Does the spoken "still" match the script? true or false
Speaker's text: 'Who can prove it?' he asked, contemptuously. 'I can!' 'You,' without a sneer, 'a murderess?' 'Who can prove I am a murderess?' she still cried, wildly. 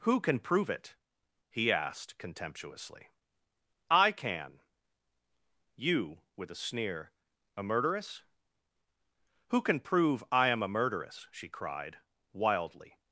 false